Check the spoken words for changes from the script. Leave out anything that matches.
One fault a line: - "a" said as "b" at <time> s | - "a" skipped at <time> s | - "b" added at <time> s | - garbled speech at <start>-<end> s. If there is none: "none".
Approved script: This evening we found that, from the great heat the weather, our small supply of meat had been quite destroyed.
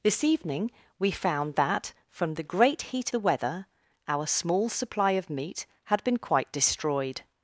none